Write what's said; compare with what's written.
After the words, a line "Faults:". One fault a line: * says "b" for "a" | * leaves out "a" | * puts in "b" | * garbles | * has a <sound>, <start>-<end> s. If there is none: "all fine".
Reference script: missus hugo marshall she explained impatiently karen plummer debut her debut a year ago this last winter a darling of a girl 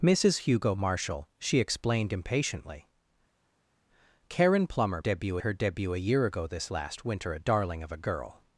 missus hugo marshall she explained impatiently karen plummer debut her debut a year ago this last winter a darling of a girl
Faults:
all fine